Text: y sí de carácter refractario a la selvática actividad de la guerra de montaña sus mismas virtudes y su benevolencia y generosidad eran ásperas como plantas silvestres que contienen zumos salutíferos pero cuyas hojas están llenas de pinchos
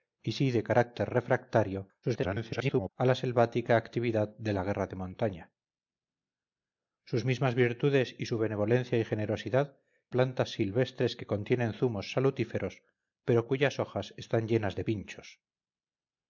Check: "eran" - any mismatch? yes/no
yes